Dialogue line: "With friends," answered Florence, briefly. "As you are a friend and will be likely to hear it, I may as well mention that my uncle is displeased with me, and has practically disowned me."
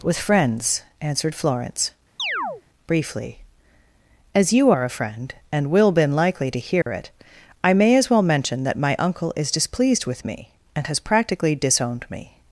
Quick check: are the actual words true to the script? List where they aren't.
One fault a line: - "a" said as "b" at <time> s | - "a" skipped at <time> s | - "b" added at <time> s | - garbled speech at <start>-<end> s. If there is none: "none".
- "be" said as "been" at 5.9 s